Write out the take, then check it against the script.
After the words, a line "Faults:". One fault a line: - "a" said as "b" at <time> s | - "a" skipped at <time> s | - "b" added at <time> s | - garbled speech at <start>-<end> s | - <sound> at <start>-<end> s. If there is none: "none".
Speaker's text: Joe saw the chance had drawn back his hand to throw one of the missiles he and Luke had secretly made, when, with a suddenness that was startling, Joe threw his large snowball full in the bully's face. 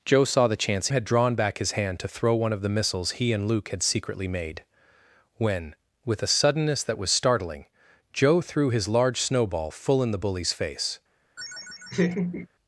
Joe saw the chance had drawn back his hand to throw one of the missiles he and Luke had secretly made, when, with a suddenness that was startling, Joe threw his large snowball full in the bully's face.
Faults:
- laugh at 11.4-12.5 s